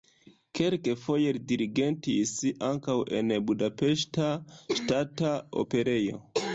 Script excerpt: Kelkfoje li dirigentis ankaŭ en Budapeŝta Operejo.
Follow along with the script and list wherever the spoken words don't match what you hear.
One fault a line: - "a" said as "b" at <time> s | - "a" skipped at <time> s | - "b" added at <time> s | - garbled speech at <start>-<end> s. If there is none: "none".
- "Ŝtata" added at 4.8 s